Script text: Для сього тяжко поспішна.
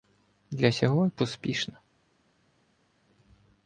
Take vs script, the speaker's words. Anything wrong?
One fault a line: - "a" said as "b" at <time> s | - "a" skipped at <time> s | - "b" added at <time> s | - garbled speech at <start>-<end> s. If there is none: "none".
- "тяжко" skipped at 1.1 s